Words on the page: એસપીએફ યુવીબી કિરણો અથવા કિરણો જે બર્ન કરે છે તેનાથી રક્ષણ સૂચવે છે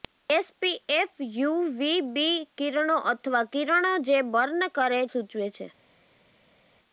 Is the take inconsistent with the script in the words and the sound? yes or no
yes